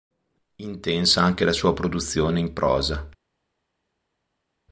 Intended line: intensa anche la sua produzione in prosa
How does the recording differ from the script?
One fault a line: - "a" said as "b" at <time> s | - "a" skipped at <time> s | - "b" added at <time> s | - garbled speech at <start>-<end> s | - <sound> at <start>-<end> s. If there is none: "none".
none